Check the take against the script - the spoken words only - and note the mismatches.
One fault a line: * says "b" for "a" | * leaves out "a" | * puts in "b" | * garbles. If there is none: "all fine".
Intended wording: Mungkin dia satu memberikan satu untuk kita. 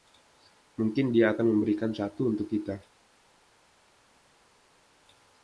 * says "akan" for "satu"